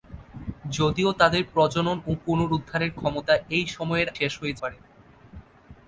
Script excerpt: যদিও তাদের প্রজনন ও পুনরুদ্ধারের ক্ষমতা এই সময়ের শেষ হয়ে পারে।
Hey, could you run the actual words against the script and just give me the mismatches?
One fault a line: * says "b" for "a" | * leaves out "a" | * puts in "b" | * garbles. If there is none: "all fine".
all fine